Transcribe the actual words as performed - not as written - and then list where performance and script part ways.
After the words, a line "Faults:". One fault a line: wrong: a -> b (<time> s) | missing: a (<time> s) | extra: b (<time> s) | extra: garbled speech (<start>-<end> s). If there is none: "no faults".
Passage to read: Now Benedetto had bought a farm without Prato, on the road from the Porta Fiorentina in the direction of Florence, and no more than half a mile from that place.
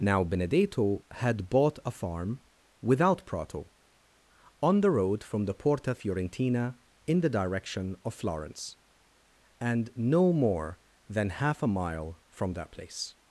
Now Benedetto had bought a farm without Prato, on the road from the Porta Fiorentina in the direction of Florence, and no more than half a mile from that place.
Faults:
no faults